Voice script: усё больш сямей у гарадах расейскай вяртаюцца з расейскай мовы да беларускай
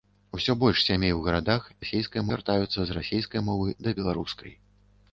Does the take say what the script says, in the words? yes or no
yes